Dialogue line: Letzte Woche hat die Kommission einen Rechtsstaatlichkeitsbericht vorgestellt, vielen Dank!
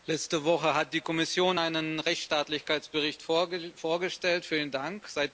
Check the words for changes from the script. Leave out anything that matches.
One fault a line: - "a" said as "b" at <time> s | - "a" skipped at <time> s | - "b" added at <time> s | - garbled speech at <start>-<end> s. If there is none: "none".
none